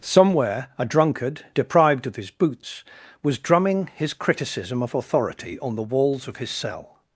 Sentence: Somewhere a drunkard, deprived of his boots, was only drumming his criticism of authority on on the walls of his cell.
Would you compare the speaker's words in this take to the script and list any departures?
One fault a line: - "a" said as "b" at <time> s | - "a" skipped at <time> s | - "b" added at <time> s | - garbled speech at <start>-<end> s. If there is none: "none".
- "only" skipped at 3.4 s
- "on" skipped at 5.8 s